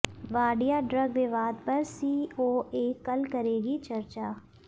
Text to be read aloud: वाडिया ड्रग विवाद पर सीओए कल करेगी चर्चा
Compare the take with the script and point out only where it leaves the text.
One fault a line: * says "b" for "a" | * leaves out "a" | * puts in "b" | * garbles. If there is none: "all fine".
all fine